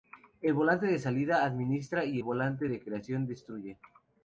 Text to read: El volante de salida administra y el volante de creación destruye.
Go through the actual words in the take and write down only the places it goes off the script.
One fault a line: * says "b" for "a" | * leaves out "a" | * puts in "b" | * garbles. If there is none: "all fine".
all fine